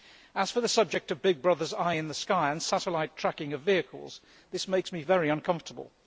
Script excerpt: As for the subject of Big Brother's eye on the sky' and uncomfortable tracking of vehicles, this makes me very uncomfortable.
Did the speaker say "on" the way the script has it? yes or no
no